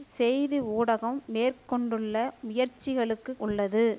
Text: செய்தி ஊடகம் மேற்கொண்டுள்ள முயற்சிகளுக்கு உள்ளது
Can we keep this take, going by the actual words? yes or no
yes